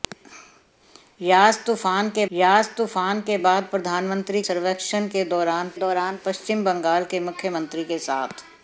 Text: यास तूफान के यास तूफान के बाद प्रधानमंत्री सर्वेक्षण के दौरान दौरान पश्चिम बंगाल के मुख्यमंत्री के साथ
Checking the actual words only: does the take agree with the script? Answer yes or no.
yes